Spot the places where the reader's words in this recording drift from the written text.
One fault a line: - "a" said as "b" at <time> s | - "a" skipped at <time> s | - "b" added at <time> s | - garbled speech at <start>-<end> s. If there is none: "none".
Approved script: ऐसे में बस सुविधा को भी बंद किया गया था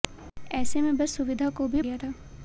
- "बंद किया" skipped at 1.8 s